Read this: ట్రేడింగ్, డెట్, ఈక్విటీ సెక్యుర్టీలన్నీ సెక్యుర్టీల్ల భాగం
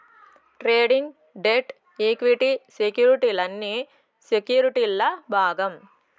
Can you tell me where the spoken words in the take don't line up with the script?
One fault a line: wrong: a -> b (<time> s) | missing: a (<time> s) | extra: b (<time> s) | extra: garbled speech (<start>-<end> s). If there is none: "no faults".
no faults